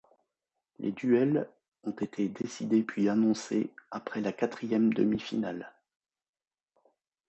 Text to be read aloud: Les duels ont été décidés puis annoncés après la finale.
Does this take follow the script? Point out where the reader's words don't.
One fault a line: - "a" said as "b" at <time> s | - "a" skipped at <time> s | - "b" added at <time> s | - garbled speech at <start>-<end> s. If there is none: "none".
- "quatrième demi" added at 4.3 s